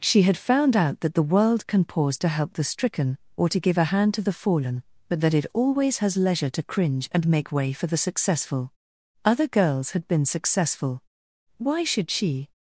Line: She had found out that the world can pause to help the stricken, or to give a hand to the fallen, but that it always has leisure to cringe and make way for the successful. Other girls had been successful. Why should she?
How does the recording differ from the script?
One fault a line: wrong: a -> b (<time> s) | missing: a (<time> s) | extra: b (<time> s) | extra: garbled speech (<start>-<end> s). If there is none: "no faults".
no faults